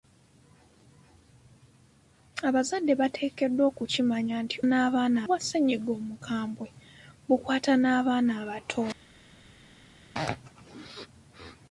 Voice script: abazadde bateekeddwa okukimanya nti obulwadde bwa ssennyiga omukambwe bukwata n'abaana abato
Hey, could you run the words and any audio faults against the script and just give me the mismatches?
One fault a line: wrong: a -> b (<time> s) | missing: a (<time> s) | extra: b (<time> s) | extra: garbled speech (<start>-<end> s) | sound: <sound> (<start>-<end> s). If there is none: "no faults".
wrong: obulwadde -> n'abaana (4.6 s)